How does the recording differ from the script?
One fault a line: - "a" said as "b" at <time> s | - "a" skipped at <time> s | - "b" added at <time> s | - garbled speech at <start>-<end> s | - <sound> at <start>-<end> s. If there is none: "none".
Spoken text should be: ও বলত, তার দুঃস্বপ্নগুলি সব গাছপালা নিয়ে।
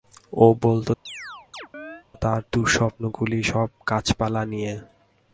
- chirp at 1.1-2.0 s